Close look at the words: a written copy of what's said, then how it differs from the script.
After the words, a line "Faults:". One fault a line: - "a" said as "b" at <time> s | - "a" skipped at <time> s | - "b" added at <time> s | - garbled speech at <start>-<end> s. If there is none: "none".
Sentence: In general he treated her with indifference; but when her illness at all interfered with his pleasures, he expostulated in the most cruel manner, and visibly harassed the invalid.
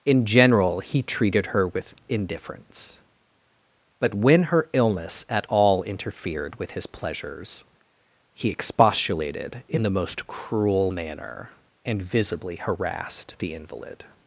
In general he treated her with indifference; but when her illness at all interfered with his pleasures, he expostulated in the most cruel manner, and visibly harassed the invalid.
Faults:
none